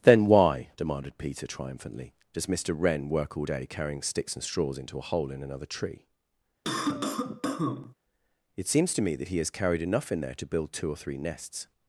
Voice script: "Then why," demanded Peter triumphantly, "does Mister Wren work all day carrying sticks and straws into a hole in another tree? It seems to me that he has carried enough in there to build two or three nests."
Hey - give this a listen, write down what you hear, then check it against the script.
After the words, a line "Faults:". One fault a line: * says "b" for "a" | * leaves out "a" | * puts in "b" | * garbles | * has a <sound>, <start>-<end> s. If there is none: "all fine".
"Then why," demanded Peter triumphantly, "does Mister Wren work all day carrying sticks and straws into a hole in another tree? It seems to me that he has carried enough in there to build two or three nests."
Faults:
* has a cough, 6.6-7.9 s